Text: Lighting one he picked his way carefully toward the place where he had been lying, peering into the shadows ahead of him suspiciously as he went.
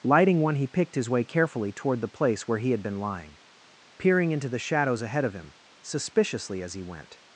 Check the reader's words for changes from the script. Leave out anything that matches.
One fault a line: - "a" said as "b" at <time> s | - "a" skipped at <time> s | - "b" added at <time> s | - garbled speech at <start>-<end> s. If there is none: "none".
none